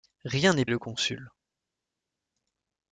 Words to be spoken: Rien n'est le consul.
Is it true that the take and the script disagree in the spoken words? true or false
false